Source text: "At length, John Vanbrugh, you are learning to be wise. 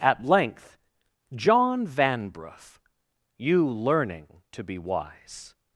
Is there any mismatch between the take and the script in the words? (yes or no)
yes